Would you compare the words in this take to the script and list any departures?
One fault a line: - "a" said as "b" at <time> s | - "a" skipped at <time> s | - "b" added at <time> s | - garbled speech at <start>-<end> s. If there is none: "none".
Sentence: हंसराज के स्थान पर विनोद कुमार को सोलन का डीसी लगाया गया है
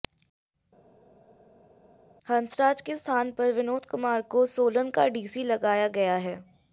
none